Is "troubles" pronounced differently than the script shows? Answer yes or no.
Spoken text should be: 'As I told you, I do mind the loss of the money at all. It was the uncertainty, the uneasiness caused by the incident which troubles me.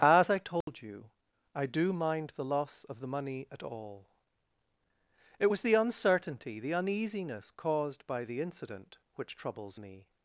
no